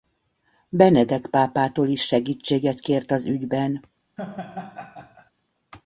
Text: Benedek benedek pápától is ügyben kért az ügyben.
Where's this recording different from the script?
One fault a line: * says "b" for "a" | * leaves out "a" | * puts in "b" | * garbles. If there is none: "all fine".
* leaves out "benedek"
* says "segítséget" for "ügyben"